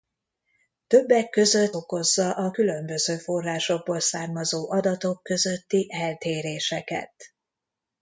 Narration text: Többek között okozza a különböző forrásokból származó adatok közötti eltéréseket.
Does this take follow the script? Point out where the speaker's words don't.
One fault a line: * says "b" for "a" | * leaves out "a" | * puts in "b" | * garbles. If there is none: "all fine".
all fine